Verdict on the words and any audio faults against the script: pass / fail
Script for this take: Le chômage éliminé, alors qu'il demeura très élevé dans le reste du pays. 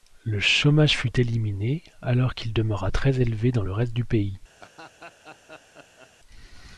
fail